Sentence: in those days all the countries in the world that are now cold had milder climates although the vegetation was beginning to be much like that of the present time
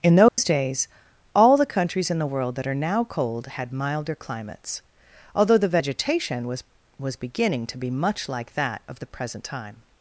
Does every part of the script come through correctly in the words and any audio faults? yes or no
no